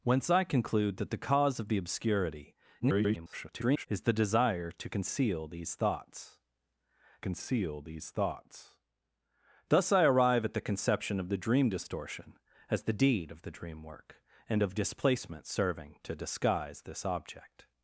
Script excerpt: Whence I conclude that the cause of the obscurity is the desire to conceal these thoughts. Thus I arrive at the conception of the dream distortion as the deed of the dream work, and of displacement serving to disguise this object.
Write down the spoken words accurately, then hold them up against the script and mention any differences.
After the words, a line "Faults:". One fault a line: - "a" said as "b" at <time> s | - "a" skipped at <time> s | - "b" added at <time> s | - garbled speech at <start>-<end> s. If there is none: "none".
Whence I conclude that the cause of the obscurity [garbled] is the desire to conceal these thoughts conceal these thoughts. Thus I arrive at the conception of the dream distortion as the deed of the dream work, and of displacement serving to disguise this object.
Faults:
- garbled speech at 2.8-3.9 s
- "conceal these thoughts" added at 7.2 s